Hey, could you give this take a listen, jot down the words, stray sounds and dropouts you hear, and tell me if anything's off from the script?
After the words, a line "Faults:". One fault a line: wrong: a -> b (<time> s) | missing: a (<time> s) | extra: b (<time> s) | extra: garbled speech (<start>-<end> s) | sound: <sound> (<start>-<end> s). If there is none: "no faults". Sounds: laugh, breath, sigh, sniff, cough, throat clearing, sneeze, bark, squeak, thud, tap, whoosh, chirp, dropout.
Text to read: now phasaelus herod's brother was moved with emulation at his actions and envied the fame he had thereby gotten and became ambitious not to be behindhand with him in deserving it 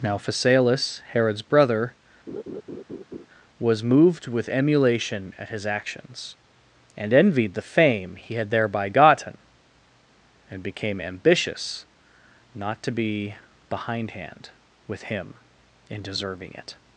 now phasaelus herod's brother was moved with emulation at his actions and envied the fame he had thereby gotten and became ambitious not to be behindhand with him in deserving it
Faults:
sound: laugh (2.3-3.3 s)